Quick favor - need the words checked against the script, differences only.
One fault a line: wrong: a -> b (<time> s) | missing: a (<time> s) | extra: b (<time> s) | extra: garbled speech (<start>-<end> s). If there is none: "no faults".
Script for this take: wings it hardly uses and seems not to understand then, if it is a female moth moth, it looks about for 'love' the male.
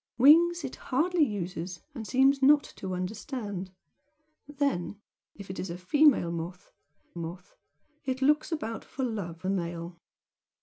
no faults